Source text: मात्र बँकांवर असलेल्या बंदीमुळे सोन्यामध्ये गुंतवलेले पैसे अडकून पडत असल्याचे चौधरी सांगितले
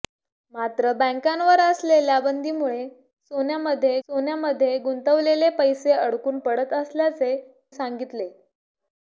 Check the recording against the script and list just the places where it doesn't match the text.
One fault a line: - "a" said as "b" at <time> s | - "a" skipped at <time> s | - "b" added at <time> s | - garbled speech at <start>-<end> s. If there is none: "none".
- "सोन्यामध्ये" added at 4.1 s
- "चौधरी" skipped at 7.4 s